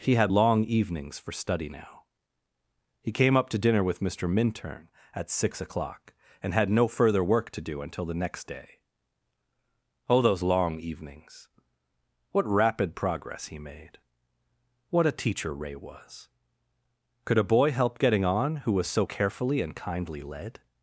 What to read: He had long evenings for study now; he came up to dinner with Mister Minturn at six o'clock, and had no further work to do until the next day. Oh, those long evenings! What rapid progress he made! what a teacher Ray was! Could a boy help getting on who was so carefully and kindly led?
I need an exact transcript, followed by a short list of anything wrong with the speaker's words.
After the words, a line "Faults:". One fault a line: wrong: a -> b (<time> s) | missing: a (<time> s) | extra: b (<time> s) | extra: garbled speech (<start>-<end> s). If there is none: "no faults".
He had long evenings for study now; he came up to dinner with Mister Minturn at six o'clock, and had no further work to do until the next day. Oh, those long evenings! What rapid progress he made! what a teacher Ray was! Could a boy help getting on who was so carefully and kindly led?
Faults:
no faults